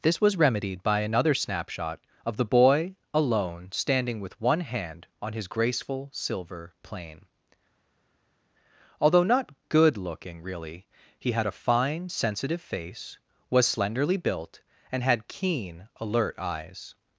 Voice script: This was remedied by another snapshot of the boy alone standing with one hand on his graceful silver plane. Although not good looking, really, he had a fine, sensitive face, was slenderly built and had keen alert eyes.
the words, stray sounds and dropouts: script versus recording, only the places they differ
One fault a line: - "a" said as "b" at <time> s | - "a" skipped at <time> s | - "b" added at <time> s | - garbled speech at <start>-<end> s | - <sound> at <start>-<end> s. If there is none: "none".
none